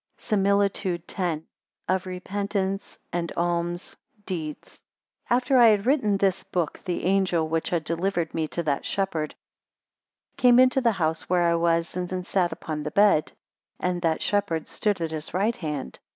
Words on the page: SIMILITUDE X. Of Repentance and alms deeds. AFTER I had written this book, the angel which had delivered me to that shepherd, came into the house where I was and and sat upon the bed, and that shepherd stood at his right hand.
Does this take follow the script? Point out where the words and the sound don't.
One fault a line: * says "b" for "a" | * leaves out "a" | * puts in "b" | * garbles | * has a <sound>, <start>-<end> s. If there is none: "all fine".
all fine